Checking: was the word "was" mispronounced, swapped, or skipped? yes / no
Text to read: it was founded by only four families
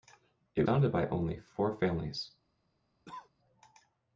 yes